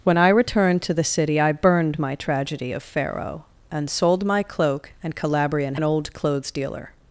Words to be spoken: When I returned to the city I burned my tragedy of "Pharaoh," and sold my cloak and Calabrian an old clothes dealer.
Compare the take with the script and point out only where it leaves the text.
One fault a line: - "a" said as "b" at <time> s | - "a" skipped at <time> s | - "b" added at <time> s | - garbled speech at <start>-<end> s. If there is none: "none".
none